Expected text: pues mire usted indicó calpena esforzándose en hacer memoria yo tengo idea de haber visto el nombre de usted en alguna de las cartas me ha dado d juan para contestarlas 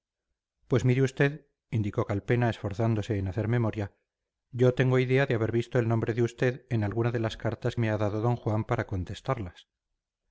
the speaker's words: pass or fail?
pass